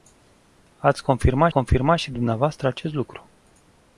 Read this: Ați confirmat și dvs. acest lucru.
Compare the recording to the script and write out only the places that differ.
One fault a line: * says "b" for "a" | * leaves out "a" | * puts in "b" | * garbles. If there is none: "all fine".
* puts in "confirmat"